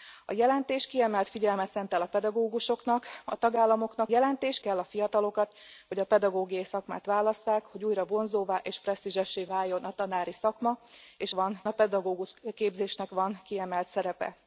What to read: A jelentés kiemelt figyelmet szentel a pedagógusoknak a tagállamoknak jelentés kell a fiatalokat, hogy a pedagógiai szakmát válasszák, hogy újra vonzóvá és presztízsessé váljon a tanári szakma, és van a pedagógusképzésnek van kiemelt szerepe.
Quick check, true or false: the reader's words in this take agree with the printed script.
true